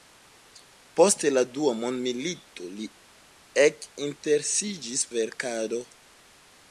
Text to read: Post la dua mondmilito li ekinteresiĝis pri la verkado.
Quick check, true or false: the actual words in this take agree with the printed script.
false